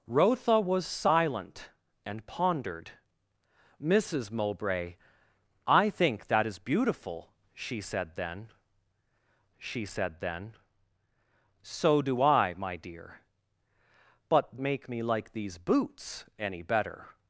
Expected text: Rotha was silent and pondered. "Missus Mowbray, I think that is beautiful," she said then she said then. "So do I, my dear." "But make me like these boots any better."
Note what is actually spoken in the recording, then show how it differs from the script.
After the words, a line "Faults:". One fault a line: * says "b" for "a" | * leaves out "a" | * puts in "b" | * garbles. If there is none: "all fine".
Rotha was silent and pondered. "Missus Mowbray, I think that is beautiful," she said then she said then. "So do I, my dear." "But make me like these boots any better."
Faults:
all fine